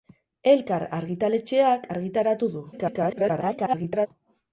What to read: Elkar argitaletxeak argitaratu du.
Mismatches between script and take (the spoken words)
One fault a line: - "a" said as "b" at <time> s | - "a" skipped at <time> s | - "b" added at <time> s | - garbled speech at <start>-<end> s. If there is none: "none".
- garbled speech at 2.7-4.1 s